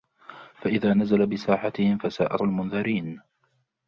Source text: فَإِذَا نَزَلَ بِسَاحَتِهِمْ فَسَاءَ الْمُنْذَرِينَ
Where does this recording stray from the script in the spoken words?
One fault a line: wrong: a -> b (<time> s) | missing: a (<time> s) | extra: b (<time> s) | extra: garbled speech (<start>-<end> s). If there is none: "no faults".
no faults